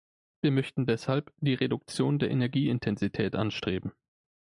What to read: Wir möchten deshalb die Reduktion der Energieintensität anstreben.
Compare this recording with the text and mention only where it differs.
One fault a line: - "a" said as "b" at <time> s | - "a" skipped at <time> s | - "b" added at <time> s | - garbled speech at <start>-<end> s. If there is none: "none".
none